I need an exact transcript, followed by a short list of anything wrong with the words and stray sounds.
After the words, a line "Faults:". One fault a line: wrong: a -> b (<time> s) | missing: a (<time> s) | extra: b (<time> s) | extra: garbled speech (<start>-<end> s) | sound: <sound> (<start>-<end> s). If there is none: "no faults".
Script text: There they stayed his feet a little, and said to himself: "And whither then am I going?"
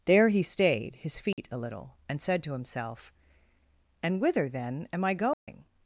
There he stayed his feet a little, and said to himself: "And whither then am I going?"
Faults:
wrong: they -> he (0.3 s)
sound: dropout (1.3-1.4 s)
sound: dropout (5.3-5.5 s)